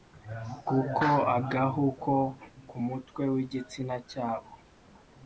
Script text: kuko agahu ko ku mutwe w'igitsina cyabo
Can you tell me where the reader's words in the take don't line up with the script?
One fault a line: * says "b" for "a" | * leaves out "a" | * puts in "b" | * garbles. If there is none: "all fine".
all fine